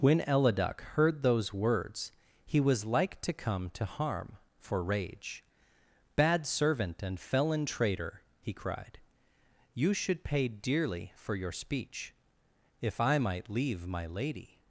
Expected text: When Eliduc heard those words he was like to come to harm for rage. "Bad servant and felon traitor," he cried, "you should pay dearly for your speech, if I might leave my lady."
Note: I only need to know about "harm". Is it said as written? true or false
true